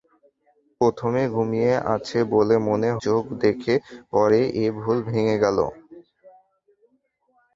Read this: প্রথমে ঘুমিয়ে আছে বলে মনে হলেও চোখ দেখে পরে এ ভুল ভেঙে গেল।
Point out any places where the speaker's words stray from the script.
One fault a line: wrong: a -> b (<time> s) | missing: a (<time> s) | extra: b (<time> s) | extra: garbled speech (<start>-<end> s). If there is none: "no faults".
missing: হলেও (2.9 s)